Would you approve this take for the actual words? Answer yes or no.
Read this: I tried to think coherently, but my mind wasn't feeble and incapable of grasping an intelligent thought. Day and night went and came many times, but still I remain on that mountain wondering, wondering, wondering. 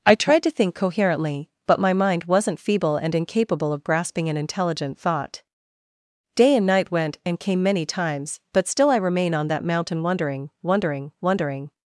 yes